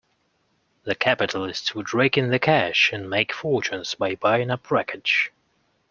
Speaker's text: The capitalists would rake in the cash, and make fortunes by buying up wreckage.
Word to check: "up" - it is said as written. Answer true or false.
true